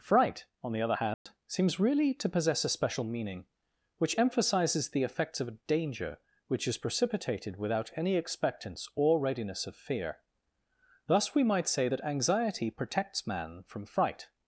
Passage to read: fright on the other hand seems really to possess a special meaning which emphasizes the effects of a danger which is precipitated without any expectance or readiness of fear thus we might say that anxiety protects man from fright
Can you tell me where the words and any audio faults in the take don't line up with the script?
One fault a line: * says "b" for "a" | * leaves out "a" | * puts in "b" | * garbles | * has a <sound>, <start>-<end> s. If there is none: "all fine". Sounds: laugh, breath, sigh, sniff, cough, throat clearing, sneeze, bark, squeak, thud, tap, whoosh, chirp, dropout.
* has a dropout, 1.1-1.3 s